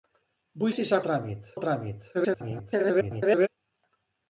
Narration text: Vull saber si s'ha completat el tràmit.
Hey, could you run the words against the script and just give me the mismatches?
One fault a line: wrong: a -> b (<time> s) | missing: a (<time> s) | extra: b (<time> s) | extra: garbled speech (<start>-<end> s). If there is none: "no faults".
missing: saber (0.7 s)
wrong: completat -> tràmit (1.1 s)
extra: garbled speech (2.1-3.5 s)